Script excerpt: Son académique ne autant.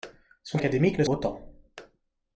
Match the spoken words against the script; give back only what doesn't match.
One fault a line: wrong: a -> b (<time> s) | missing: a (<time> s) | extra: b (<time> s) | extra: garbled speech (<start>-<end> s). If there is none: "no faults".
no faults